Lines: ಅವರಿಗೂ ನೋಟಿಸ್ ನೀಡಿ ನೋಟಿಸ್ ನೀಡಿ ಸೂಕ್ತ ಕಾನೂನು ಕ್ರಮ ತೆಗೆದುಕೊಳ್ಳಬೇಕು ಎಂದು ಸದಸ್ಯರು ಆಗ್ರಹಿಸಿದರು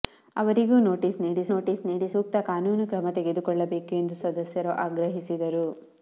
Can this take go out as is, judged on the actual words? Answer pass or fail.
pass